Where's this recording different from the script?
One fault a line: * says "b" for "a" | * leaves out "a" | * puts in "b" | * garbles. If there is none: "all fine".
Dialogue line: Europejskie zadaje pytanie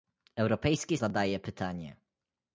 all fine